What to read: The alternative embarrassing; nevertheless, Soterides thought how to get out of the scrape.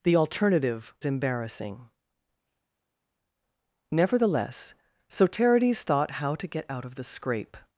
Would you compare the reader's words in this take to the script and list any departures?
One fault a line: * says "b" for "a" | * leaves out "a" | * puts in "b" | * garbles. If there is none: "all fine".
all fine